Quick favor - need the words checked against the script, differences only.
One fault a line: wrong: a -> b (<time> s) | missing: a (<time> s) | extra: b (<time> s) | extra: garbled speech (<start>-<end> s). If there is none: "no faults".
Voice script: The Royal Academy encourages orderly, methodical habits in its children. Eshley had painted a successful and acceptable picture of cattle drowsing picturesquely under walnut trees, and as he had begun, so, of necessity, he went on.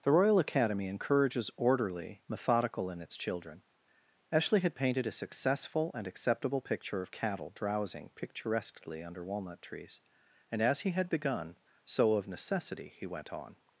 missing: habits (2.9 s)